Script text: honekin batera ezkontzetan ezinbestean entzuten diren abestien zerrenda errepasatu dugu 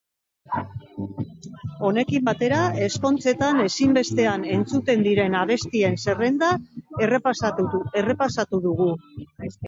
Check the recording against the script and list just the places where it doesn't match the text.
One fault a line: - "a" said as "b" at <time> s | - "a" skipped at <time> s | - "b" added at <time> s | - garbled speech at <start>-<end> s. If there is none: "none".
none